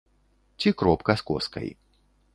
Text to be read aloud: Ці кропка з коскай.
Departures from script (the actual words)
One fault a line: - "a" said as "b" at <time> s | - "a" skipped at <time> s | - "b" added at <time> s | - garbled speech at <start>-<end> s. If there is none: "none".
none